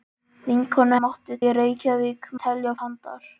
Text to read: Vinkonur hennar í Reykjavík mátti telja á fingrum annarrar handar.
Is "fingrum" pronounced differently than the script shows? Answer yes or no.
yes